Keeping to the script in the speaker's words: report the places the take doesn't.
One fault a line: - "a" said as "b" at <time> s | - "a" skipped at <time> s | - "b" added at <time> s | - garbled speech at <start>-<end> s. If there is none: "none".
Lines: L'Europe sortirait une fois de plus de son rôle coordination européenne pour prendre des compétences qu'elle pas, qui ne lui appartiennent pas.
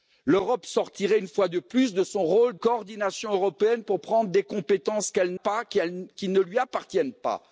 none